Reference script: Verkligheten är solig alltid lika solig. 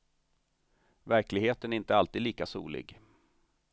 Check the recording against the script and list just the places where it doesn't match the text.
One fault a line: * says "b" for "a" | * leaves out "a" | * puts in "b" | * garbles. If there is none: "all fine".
* says "inte" for "solig"